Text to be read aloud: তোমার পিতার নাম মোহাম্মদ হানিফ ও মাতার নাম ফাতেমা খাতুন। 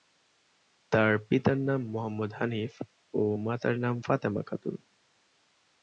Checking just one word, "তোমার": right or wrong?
wrong